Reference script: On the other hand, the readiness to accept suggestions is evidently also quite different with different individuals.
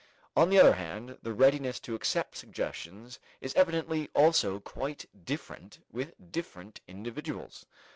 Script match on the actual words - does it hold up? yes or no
yes